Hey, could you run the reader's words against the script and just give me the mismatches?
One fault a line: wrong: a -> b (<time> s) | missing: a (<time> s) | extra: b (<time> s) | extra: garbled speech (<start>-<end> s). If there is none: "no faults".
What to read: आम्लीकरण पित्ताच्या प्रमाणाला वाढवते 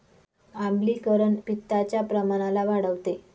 no faults